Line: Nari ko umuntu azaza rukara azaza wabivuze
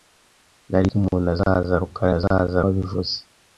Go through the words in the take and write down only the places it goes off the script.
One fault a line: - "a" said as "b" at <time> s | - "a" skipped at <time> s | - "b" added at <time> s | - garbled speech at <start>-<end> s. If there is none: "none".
none